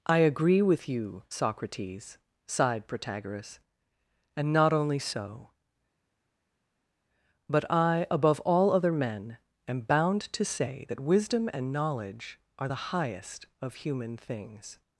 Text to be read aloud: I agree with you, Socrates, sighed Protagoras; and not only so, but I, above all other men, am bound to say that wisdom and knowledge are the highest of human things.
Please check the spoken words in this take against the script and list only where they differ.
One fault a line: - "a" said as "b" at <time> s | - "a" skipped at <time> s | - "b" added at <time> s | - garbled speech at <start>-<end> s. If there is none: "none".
none